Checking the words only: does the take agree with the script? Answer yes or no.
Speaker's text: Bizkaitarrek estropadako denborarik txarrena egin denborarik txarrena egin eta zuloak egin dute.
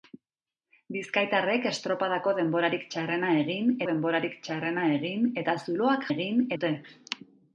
yes